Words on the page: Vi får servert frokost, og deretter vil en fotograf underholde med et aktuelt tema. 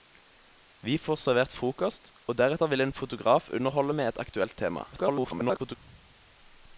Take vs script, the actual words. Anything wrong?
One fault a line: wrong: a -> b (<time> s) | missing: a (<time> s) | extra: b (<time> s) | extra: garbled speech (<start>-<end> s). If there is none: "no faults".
extra: garbled speech (4.9-5.8 s)